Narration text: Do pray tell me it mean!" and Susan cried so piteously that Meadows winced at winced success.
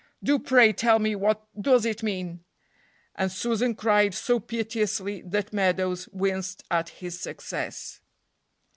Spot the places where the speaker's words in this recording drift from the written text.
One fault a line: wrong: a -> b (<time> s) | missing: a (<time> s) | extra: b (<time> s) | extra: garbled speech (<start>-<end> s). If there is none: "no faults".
extra: what does (1.1 s)
wrong: winced -> his (6.9 s)